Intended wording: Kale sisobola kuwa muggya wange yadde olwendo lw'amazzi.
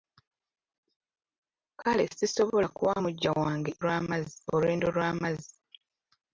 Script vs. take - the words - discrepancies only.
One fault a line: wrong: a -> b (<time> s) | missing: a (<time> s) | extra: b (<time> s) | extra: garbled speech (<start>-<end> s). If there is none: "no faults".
wrong: yadde -> lw'amazzi (3.8 s)